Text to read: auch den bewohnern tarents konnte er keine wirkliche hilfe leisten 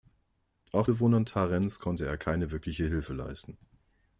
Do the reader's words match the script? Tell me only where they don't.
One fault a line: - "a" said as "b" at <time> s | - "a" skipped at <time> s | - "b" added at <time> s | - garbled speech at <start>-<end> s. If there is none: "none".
- "den" skipped at 0.9 s